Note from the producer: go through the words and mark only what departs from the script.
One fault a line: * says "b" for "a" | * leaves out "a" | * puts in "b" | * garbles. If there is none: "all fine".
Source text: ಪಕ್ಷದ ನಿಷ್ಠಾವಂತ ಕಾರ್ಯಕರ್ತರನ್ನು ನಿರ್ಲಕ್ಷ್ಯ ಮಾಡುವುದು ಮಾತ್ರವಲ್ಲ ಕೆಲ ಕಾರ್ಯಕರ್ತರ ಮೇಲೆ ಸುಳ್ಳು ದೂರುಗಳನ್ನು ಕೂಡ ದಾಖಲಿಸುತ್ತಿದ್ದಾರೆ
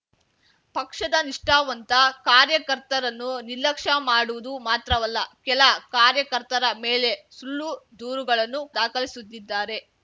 * leaves out "ಕೂಡ"